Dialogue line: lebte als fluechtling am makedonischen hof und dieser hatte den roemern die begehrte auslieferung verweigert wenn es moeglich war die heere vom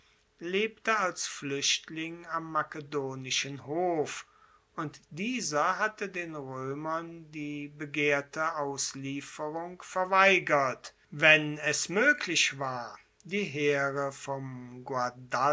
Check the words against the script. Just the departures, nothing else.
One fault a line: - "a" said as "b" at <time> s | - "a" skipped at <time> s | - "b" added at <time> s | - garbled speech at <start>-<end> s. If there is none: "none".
none